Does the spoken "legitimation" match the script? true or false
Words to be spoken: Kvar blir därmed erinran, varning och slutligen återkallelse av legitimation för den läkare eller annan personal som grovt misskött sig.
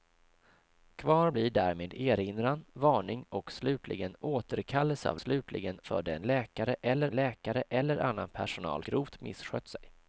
false